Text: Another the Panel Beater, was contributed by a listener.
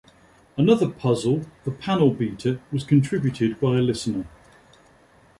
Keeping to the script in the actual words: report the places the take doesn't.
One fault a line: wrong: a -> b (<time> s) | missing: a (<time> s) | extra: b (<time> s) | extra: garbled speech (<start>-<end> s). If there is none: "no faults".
extra: puzzle (0.9 s)